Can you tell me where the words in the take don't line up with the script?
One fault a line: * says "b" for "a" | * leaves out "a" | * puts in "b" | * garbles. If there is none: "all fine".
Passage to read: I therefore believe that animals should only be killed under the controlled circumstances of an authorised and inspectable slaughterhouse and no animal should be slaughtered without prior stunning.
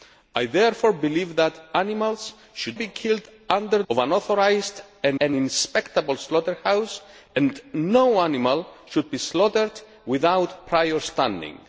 * leaves out "only"
* leaves out "the controlled circumstances"
* puts in "and"